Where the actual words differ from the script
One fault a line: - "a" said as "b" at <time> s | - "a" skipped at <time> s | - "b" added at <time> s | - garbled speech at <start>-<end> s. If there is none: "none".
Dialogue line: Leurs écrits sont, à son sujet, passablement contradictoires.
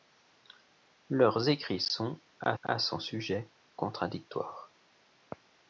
- "à" added at 2.6 s
- "passablement" skipped at 3.5 s